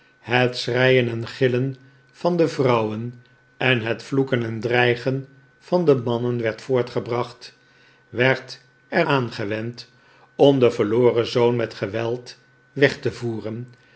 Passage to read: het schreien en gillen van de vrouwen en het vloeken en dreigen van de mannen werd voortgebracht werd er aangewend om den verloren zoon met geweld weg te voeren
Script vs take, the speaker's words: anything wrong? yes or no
no